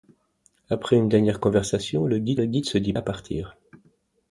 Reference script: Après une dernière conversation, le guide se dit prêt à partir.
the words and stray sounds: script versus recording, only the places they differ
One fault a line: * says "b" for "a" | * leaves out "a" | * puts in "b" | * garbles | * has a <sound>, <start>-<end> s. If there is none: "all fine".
* puts in "le guide"
* leaves out "prêt"